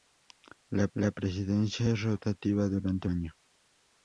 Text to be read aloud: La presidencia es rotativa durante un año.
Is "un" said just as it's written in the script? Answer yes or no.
no